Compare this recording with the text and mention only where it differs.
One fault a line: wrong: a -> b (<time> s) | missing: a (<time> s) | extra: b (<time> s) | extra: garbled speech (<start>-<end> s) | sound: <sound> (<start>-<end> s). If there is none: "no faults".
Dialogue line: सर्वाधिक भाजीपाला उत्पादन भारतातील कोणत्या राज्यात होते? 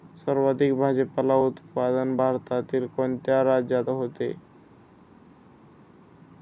no faults